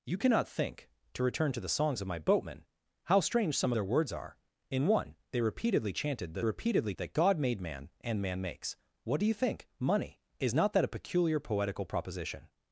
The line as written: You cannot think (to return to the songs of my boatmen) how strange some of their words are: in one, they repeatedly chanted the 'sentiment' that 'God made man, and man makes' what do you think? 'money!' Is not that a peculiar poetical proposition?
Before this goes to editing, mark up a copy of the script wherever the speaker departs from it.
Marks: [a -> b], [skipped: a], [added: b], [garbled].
You cannot think (to return to the songs of my boatmen) how strange some [skipped: of] their words are: in one, they repeatedly chanted the ['sentiment' -> repeatedly] that 'God made man, and man makes' what do you think? 'money!' Is not that a peculiar poetical proposition?